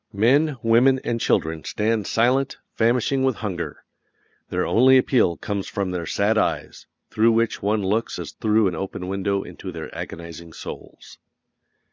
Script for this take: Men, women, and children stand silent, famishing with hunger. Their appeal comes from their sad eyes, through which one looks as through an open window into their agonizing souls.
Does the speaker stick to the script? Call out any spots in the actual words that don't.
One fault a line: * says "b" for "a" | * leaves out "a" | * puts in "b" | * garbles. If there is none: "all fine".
* puts in "only"